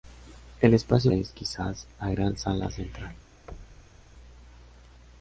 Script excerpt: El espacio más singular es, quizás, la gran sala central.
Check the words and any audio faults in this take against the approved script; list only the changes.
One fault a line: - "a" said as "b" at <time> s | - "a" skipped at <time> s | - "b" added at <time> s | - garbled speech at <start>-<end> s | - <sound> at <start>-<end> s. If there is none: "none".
- "más singular" skipped at 1.1 s
- thud at 3.5-4.0 s